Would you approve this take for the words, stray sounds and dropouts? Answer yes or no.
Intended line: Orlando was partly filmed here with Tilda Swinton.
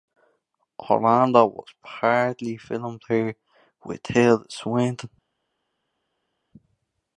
yes